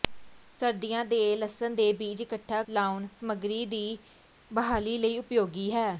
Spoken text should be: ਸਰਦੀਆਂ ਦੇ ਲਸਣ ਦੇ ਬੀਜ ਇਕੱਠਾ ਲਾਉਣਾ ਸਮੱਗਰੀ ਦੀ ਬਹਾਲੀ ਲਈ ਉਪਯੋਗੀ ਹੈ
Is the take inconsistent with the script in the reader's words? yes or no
no